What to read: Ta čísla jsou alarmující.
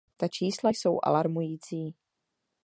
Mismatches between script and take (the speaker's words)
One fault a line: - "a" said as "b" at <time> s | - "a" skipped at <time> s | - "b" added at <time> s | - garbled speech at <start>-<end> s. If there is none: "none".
none